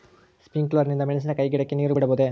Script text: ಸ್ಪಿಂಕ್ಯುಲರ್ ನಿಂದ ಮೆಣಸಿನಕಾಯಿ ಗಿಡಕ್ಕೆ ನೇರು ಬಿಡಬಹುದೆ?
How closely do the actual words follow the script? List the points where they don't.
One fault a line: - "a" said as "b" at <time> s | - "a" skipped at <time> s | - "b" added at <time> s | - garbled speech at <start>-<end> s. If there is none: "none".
none